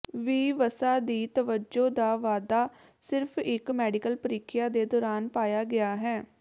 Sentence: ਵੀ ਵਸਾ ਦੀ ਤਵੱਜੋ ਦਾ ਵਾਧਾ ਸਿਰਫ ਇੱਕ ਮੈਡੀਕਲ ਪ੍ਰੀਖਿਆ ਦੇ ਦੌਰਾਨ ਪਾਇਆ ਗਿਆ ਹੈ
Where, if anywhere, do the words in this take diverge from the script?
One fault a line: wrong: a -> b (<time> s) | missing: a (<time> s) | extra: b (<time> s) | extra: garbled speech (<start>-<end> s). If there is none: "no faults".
no faults